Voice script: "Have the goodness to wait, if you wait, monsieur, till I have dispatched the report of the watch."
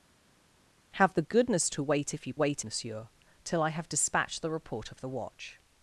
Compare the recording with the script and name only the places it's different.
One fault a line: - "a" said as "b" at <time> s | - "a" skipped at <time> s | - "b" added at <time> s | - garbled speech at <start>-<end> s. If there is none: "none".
none